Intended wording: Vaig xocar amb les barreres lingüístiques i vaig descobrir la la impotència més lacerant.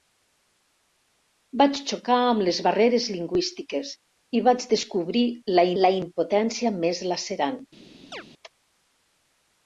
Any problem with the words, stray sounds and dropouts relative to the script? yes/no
yes